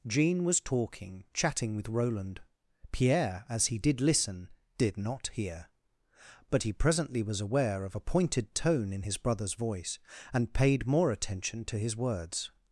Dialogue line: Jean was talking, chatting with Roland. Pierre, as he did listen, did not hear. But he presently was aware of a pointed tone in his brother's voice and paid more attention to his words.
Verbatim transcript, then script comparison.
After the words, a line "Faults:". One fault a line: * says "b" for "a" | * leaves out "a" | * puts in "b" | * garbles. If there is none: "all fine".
Jean was talking, chatting with Roland. Pierre, as he did listen, did not hear. But he presently was aware of a pointed tone in his brother's voice and paid more attention to his words.
Faults:
all fine